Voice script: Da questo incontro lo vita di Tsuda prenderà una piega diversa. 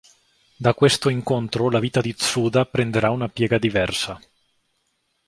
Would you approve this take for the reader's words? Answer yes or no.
no